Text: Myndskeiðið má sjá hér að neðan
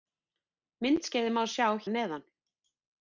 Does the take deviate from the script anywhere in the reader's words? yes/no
yes